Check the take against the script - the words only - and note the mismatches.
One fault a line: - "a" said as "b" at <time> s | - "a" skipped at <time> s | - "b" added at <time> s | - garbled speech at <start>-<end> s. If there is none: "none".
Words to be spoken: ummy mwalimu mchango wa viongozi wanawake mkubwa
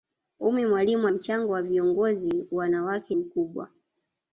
none